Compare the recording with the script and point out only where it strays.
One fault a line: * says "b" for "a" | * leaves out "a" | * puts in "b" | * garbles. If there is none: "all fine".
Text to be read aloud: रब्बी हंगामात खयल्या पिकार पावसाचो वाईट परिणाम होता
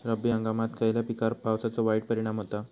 all fine